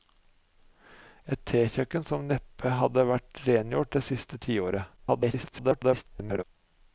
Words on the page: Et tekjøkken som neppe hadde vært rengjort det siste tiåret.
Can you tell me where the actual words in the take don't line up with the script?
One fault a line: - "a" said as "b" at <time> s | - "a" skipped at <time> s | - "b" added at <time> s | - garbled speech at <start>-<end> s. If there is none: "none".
- garbled speech at 5.0-6.4 s